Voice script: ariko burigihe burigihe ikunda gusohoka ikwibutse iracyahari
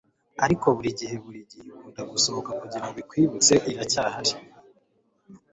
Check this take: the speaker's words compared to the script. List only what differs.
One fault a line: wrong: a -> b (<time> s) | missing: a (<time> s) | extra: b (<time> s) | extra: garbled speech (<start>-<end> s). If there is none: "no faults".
extra: kugirango (2.6 s)